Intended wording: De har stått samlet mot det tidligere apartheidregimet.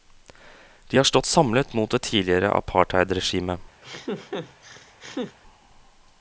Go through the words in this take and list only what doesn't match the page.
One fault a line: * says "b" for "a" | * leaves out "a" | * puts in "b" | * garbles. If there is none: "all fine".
all fine